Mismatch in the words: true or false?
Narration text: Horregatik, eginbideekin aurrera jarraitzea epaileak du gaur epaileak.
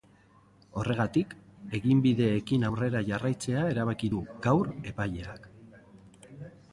true